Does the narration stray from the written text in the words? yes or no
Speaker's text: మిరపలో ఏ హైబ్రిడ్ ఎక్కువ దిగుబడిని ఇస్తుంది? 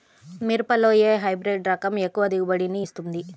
yes